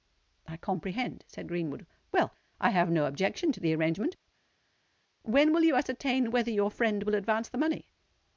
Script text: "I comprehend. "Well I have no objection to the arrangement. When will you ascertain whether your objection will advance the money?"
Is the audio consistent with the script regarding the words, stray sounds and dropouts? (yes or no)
no